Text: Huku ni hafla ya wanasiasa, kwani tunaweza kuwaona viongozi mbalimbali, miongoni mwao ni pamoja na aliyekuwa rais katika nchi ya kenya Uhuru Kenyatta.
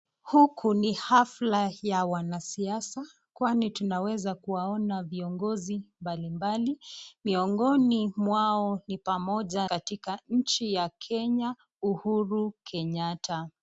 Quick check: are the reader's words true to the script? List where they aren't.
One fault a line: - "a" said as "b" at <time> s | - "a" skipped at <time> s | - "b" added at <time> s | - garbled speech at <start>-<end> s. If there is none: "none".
- "na aliyekuwa rais" skipped at 9.7 s